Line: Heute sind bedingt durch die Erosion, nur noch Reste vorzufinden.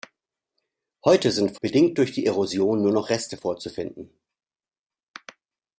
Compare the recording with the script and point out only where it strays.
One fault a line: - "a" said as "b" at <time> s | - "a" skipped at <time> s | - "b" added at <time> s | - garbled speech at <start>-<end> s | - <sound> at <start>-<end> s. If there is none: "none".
none